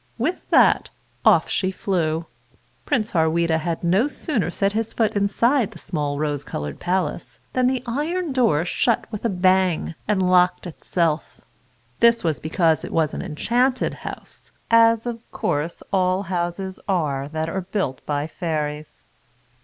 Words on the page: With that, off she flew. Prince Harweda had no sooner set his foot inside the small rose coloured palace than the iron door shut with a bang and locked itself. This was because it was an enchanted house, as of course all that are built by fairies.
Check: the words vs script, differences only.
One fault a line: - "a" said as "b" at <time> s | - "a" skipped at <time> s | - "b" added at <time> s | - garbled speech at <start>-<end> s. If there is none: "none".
- "houses are" added at 16.2 s